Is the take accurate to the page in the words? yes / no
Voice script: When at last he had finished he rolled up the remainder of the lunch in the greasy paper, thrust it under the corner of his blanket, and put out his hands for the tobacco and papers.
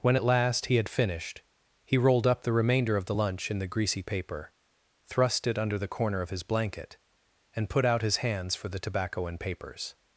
yes